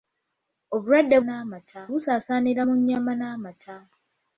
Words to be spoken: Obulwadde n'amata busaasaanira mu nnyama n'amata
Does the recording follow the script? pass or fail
pass